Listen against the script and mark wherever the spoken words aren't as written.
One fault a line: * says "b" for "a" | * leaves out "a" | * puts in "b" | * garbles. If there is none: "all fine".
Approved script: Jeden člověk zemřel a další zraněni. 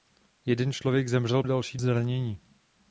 all fine